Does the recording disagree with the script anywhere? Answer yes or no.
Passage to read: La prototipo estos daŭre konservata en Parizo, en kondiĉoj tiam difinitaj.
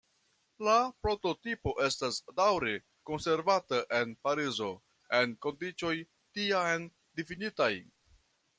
yes